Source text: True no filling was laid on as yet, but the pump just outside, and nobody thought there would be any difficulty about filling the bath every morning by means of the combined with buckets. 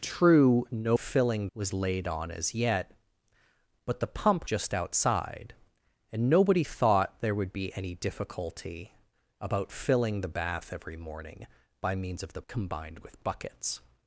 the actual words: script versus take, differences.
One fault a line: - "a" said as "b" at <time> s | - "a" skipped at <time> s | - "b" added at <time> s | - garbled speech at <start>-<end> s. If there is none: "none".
none